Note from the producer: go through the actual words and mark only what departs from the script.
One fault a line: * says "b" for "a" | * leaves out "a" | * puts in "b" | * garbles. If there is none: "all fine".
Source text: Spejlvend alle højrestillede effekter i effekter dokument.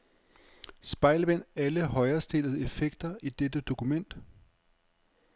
* says "dette" for "effekter"